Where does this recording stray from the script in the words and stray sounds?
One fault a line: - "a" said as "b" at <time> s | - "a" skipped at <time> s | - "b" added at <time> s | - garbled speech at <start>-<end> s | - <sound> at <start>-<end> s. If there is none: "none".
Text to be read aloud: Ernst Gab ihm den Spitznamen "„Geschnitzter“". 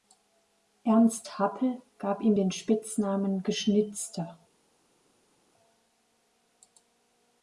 - "Happel" added at 1.4 s